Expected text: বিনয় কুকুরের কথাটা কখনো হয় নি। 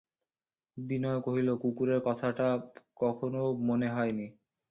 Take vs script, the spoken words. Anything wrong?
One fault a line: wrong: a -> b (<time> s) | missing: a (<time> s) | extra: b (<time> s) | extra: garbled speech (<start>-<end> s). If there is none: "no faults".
extra: কহিল (1.2 s)
extra: মনে (3.7 s)